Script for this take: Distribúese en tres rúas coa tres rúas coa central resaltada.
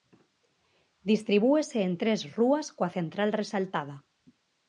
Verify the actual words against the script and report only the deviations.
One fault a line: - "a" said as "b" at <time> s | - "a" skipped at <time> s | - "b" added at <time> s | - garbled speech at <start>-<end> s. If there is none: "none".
- "tres rúas coa" skipped at 2.9 s